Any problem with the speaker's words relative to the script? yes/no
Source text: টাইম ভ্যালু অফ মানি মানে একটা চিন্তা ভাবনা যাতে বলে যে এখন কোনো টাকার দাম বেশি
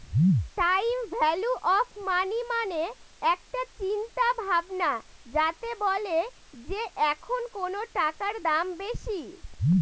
no